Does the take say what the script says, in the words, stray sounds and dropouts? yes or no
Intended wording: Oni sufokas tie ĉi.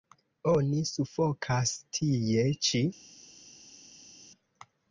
yes